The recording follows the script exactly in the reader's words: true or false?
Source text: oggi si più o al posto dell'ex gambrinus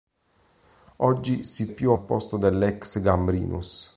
true